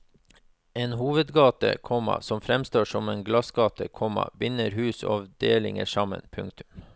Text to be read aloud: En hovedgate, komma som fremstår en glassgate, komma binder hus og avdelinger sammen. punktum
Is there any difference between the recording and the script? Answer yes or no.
yes